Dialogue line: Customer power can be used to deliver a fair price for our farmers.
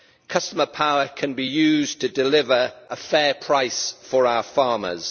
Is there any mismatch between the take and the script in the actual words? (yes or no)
no